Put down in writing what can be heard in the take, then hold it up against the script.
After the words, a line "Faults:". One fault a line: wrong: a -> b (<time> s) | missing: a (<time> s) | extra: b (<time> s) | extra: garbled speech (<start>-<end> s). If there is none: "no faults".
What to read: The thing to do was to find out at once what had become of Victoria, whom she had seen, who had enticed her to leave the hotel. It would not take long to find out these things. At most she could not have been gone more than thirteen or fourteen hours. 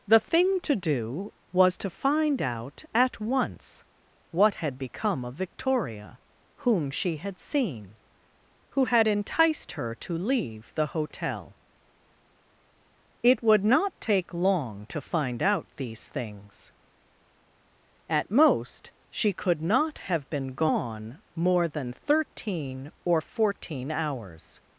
The thing to do was to find out at once what had become of Victoria, whom she had seen, who had enticed her to leave the hotel. It would not take long to find out these things. At most she could not have been gone more than thirteen or fourteen hours.
Faults:
no faults